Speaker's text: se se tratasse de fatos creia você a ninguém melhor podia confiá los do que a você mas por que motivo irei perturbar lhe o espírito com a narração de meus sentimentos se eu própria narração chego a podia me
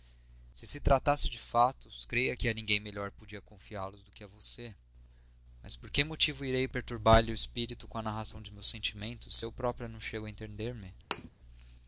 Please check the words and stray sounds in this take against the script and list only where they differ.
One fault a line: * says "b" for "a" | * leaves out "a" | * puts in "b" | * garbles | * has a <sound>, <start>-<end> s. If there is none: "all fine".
* says "que" for "você"
* says "não" for "narração"
* says "entender" for "podia"
* has a thud, 11.1-11.3 s